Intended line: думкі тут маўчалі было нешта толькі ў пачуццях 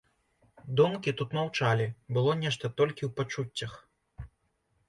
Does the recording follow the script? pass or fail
pass